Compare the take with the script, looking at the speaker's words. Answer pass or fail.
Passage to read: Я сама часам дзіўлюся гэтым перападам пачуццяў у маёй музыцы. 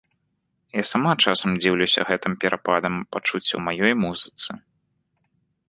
pass